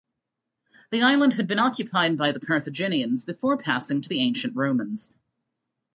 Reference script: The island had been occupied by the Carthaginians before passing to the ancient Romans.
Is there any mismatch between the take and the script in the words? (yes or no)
no